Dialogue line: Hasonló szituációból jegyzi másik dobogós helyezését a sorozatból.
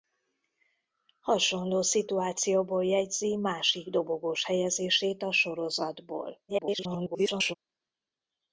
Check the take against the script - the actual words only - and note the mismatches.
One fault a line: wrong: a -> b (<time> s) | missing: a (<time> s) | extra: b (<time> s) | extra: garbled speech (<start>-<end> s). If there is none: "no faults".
extra: garbled speech (6.5-7.5 s)